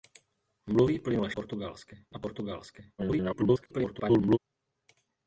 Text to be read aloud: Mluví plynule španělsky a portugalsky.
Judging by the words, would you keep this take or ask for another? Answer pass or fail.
fail